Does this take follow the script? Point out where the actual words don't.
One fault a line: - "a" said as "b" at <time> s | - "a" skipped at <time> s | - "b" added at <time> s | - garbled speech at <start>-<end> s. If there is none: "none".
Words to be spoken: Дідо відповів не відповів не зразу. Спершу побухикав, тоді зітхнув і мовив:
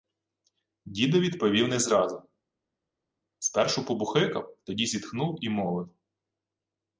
- "відповів не" skipped at 1.8 s